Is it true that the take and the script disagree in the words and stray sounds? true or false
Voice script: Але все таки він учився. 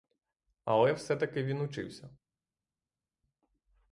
false